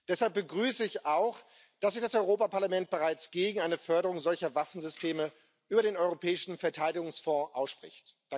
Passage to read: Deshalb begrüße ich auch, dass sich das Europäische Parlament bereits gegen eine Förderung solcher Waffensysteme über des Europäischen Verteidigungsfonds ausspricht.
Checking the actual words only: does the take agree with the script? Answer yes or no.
no